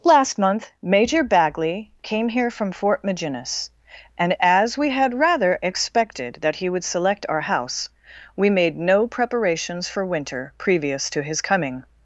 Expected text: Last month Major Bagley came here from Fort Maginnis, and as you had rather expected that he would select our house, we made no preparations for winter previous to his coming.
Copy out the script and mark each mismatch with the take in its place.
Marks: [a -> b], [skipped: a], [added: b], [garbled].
Last month Major Bagley came here from Fort Maginnis, and as [you -> we] had rather expected that he would select our house, we made no preparations for winter previous to his coming.